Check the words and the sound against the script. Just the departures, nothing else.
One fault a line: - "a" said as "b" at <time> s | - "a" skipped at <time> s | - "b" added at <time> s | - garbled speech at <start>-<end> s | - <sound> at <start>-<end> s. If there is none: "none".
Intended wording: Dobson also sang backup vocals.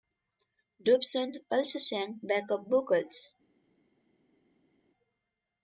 none